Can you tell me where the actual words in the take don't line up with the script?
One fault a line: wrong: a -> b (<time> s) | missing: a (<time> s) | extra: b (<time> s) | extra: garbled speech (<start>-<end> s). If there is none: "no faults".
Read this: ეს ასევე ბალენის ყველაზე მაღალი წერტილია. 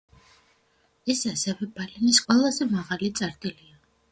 no faults